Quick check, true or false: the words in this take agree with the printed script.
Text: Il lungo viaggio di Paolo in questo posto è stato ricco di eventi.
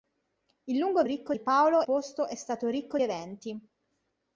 false